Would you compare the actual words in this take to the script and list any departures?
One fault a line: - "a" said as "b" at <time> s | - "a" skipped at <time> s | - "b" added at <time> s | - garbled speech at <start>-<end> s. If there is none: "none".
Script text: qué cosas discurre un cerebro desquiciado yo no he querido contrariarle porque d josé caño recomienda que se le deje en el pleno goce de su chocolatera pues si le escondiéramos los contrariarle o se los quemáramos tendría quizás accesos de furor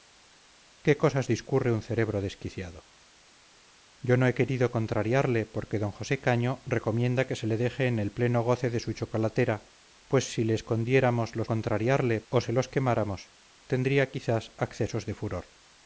none